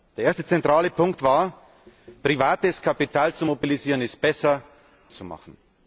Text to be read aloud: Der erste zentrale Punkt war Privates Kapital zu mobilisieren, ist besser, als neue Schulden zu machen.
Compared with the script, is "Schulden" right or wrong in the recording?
wrong